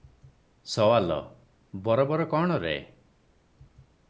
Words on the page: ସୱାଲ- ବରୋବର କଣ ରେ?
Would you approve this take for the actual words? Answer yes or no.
yes